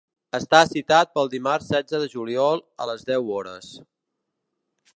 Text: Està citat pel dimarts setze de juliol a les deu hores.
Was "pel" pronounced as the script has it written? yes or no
yes